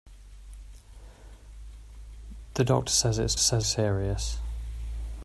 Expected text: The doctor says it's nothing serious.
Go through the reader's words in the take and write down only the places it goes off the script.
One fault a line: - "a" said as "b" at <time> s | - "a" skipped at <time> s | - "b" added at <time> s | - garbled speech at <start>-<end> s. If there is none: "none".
- "nothing" said as "says" at 3.4 s